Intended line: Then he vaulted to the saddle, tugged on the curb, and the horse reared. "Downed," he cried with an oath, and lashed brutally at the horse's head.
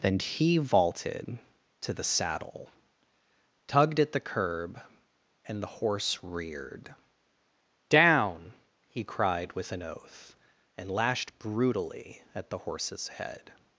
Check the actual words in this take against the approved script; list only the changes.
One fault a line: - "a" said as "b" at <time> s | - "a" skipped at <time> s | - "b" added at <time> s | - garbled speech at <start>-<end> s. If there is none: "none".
- "on" said as "at" at 4.0 s
- "Downed" said as "Down" at 7.9 s